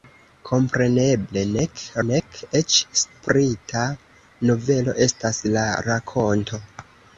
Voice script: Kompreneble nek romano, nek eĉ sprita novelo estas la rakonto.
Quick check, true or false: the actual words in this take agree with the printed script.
false